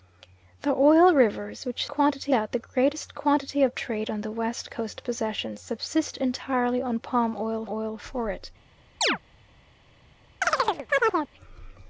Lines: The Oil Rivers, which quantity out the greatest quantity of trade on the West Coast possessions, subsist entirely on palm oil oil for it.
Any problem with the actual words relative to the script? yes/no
no